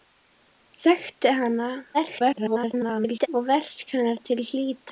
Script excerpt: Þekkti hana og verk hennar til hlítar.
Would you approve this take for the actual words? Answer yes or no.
no